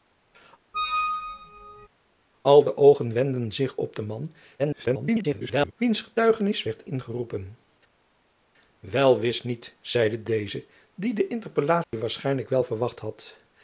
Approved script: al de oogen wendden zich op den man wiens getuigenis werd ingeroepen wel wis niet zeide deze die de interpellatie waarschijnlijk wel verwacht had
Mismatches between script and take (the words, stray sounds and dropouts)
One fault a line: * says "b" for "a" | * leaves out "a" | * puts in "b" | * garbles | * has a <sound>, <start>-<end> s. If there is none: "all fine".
* has a squeak, 0.7-1.9 s
* garbles
* has a dropout, 11.8-11.9 s